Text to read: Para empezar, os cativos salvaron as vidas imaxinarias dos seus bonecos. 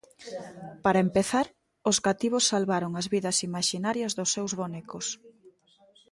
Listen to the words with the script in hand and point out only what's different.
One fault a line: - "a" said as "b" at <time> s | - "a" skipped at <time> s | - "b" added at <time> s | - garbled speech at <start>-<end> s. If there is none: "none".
none